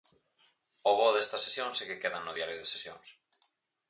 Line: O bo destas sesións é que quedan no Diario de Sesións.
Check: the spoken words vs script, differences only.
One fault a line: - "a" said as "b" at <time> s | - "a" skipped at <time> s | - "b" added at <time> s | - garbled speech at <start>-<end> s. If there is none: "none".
none